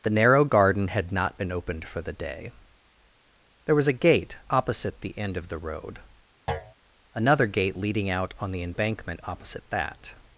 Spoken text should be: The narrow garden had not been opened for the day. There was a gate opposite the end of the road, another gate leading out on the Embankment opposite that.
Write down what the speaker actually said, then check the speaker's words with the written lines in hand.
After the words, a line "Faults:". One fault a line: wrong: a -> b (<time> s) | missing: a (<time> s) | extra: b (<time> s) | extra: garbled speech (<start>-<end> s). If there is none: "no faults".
The narrow garden had not been opened for the day. There was a gate opposite the end of the road, another gate leading out on the Embankment opposite that.
Faults:
no faults